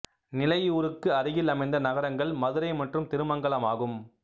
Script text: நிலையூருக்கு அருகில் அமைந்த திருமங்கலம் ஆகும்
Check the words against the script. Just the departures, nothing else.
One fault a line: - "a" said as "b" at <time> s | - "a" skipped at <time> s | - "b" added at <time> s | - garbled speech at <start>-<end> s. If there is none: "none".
- "நகரங்கள் மதுரை மற்றும்" added at 1.9 s